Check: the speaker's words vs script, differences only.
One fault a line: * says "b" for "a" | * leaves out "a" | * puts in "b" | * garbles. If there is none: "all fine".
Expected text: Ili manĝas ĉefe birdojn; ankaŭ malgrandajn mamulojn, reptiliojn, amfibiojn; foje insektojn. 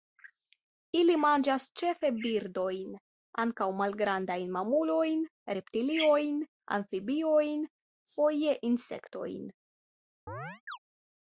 all fine